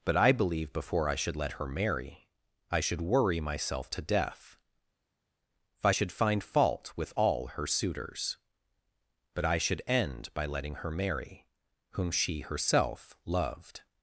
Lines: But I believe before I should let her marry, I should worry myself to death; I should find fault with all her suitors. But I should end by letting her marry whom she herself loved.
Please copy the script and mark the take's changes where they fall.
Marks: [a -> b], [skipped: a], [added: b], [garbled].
But I believe before I should let her marry, I should worry myself to death; [added: if] I should find fault with all her suitors. But I should end by letting her marry whom she herself loved.